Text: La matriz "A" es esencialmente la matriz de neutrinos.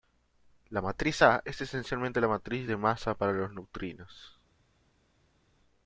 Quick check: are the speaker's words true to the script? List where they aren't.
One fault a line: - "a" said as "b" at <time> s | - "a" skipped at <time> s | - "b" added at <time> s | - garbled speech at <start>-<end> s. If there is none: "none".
- "masa para los" added at 2.8 s